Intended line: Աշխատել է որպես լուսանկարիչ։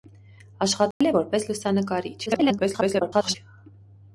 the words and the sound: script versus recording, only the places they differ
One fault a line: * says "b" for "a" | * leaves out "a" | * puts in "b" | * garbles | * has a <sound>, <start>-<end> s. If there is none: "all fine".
* has a dropout, 0.9-1.0 s
* garbles